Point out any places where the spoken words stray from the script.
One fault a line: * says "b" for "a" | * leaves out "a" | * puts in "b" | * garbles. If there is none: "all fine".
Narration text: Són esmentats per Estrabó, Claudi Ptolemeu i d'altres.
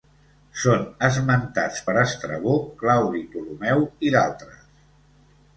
all fine